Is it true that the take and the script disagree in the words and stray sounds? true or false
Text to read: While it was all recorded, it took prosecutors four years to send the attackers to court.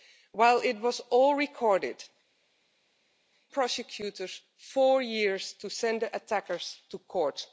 true